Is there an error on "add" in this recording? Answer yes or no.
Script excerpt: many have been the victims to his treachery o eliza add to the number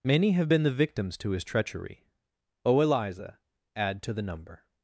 no